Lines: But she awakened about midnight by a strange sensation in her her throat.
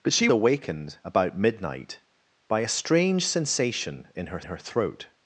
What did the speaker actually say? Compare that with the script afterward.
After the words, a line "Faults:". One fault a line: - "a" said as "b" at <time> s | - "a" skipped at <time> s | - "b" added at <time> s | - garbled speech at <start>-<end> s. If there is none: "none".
But she awakened about midnight by a strange sensation in her her throat.
Faults:
none